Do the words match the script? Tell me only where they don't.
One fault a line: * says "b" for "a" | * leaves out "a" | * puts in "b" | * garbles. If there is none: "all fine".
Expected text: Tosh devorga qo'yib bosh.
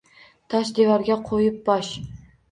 all fine